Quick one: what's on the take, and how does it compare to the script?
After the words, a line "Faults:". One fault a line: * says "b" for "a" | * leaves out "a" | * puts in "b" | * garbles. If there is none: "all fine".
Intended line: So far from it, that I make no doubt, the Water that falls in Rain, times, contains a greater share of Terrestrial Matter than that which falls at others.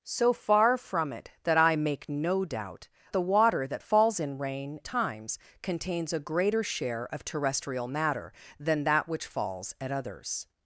So far from it, that I make no doubt, the Water that falls in Rain, times, contains a greater share of Terrestrial Matter than that which falls at others.
Faults:
all fine